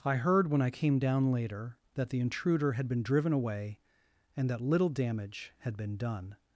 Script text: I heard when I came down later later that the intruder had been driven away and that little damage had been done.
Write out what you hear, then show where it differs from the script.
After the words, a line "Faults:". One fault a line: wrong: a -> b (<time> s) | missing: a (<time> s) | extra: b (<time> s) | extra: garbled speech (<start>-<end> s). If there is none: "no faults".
I heard when I came down later that the intruder had been driven away and that little damage had been done.
Faults:
missing: later (1.8 s)